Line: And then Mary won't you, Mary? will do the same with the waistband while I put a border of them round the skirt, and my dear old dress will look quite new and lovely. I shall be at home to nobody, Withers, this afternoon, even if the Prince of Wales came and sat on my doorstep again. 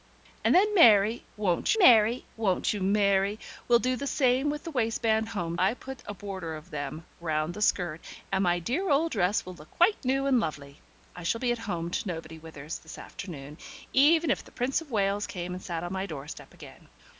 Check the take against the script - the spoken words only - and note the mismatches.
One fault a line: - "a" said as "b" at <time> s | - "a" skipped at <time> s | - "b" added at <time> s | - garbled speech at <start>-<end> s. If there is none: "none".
- "Mary won't" added at 1.8 s
- "while" said as "home" at 5.3 s